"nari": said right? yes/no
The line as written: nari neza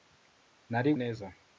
yes